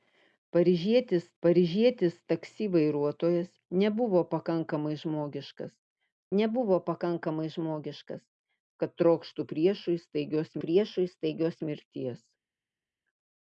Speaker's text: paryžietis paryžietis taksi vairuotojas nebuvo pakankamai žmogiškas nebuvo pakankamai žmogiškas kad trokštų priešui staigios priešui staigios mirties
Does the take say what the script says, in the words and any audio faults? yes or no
yes